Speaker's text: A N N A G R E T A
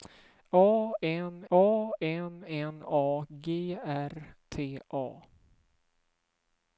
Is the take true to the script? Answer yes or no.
no